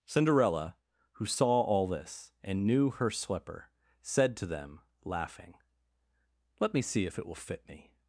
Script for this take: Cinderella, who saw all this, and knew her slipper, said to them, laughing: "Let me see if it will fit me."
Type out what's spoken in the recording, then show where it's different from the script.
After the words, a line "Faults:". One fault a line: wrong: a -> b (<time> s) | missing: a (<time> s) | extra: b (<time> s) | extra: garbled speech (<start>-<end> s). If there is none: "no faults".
Cinderella, who saw all this, and knew her slipper, said to them, laughing: "Let me see if it will fit me."
Faults:
no faults